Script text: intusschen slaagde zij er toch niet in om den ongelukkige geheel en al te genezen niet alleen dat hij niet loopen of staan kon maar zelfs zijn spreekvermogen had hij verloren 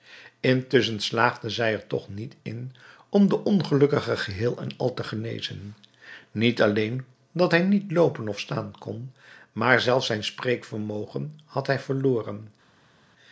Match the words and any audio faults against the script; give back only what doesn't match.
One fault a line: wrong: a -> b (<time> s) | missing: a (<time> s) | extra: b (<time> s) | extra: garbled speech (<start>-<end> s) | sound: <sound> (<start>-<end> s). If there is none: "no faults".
no faults